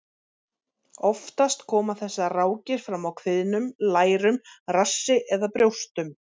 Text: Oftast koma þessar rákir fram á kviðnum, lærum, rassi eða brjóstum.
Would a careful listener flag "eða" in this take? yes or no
no